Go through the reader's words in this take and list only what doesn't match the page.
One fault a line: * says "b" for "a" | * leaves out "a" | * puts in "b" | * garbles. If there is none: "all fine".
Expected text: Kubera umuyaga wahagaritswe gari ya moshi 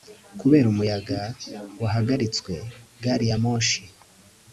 all fine